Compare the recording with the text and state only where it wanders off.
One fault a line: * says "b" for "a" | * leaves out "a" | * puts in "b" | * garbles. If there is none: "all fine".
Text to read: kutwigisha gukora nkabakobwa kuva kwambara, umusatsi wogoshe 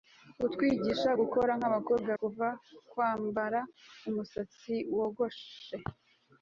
all fine